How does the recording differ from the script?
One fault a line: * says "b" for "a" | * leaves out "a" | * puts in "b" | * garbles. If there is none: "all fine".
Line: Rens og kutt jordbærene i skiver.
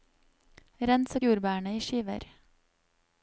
* leaves out "kutt"